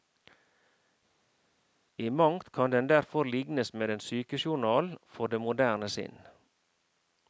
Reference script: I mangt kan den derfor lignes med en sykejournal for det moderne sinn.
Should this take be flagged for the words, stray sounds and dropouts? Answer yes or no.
no